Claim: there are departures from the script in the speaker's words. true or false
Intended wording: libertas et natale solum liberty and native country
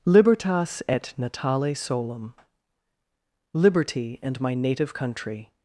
true